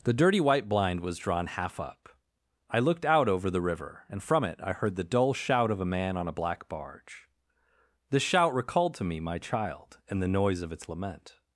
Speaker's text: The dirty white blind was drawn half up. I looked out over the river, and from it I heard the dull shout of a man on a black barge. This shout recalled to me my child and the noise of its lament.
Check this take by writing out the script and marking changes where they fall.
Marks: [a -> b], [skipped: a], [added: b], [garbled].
The dirty white blind was drawn half up. I looked out over the river, and from it I heard the dull shout of a man on a black barge. This shout recalled to me my child and the noise of its lament.